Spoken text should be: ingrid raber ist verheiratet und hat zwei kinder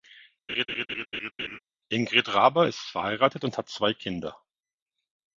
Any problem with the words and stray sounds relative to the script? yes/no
yes